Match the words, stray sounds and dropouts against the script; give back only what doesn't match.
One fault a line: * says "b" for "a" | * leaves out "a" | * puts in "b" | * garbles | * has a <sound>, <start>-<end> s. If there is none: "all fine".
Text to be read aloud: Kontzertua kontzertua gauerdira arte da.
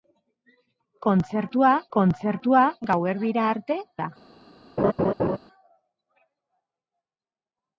* has a laugh, 4.8-5.4 s